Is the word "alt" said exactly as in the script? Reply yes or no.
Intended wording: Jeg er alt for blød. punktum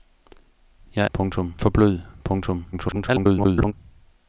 no